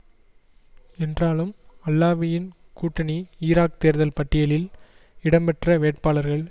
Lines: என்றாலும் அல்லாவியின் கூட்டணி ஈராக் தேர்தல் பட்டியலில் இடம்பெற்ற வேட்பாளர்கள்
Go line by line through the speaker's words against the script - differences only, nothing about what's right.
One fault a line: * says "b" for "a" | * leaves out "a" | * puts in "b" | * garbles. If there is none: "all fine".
all fine